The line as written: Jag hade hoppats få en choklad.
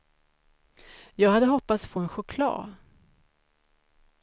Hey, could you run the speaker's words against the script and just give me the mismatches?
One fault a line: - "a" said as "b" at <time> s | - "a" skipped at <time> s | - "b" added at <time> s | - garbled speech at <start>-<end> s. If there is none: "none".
none